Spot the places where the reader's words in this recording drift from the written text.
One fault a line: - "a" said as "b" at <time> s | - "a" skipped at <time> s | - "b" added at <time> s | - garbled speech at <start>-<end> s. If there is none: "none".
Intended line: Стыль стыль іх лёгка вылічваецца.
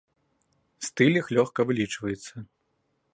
- "стыль" skipped at 1.2 s